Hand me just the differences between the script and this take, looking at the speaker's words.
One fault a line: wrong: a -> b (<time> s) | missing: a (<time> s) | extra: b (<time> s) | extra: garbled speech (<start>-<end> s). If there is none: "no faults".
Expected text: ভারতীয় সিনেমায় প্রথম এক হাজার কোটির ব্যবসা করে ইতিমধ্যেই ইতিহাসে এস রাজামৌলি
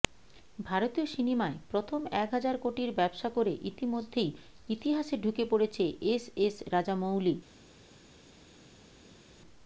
extra: ঢুকে পড়েছে এস (5.2 s)